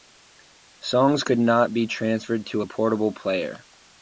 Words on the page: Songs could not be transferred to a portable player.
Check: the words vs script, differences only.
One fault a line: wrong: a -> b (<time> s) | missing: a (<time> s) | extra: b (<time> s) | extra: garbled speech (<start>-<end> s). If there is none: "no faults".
no faults